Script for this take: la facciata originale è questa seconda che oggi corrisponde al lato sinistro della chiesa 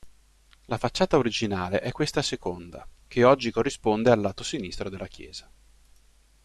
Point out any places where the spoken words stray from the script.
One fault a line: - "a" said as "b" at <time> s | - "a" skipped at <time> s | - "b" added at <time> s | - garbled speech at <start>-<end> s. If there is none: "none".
none